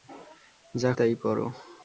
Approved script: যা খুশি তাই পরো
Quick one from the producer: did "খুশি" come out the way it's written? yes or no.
no